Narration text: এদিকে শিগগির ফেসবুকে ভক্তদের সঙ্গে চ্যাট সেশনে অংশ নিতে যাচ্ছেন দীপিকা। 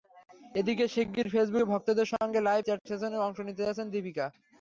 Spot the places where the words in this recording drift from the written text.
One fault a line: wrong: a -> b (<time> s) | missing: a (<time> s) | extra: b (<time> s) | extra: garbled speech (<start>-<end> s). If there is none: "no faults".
extra: লাইভ (2.4 s)